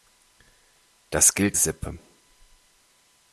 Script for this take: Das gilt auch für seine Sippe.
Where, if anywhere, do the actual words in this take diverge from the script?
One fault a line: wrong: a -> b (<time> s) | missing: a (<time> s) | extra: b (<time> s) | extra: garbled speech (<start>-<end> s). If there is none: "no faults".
missing: auch für seine (1.6 s)